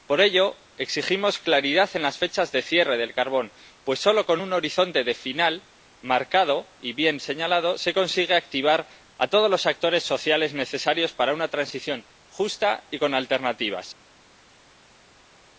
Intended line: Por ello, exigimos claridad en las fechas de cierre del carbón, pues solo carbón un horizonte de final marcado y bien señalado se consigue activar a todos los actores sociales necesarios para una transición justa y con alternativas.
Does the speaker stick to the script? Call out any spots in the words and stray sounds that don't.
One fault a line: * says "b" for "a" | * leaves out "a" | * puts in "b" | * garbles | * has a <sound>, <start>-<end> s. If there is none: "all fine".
* says "con" for "carbón"